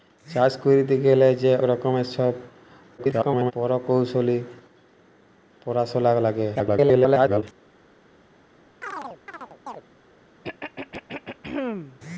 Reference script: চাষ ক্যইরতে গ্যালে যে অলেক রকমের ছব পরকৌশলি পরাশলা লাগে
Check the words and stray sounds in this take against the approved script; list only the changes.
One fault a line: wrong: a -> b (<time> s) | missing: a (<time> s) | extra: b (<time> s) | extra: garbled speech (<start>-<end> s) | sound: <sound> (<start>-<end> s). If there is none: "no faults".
missing: অলেক (1.5 s)
extra: garbled speech (3.0-3.5 s)
extra: garbled speech (6.5-7.4 s)
sound: chirp (8.8-9.8 s)
sound: throat clearing (10.4-12.0 s)